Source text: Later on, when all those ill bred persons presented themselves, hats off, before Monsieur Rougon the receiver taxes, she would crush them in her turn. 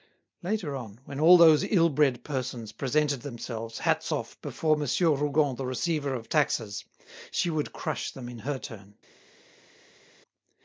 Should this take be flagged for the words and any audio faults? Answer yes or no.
yes